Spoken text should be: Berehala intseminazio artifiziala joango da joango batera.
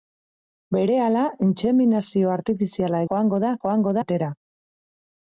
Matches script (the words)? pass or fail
pass